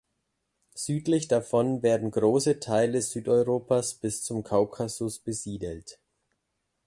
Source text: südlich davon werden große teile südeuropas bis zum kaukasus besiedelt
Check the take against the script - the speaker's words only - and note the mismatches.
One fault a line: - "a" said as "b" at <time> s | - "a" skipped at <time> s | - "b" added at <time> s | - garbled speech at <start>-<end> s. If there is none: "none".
none